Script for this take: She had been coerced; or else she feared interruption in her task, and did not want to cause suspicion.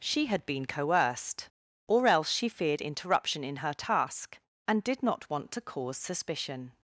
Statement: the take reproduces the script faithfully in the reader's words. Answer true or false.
true